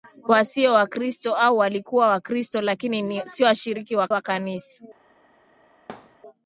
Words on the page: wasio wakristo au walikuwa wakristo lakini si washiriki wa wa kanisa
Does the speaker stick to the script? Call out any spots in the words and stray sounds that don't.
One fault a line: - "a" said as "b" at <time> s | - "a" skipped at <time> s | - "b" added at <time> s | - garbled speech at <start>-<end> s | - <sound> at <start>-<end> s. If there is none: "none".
- thud at 5.9-6.2 s